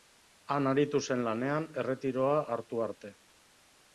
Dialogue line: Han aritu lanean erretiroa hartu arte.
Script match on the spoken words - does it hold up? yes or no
no